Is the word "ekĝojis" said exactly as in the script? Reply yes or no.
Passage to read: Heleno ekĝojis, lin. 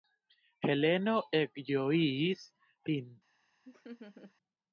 yes